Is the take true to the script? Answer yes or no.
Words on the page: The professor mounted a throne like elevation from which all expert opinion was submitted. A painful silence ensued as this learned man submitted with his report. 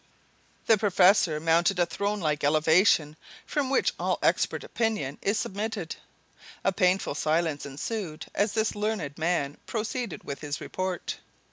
no